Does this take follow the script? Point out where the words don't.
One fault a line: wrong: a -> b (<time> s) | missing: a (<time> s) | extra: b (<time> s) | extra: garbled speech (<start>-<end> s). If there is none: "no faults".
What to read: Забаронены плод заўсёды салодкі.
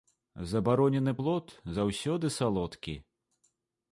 no faults